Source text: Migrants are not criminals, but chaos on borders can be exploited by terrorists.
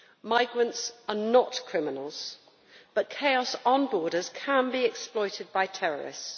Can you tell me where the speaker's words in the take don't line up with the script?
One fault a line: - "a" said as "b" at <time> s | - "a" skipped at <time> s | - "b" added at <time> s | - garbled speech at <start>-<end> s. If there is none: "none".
none